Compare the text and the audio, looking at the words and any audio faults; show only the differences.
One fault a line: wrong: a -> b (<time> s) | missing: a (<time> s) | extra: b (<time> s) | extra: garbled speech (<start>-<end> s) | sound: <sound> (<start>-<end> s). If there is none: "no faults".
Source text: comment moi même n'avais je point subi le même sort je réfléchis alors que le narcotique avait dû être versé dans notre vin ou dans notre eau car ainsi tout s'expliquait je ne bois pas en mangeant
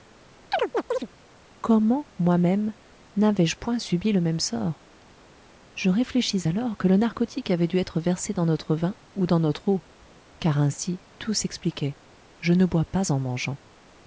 sound: chirp (0.5-1.1 s)